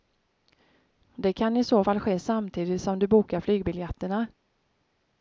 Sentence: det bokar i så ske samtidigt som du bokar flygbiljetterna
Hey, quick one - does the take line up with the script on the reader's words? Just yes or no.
no